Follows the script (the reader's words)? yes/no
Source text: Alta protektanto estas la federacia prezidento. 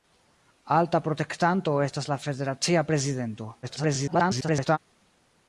no